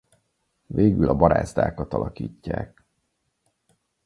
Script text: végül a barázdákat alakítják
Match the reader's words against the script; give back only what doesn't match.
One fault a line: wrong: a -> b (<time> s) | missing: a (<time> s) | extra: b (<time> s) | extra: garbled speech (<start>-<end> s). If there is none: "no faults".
no faults